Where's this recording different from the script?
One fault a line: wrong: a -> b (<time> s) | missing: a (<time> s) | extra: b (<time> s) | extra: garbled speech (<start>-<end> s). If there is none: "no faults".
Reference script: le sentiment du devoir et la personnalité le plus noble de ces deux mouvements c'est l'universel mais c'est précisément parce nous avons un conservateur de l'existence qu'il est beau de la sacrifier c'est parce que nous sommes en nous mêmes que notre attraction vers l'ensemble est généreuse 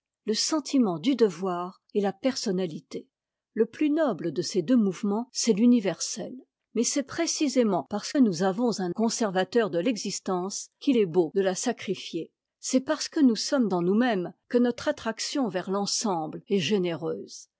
no faults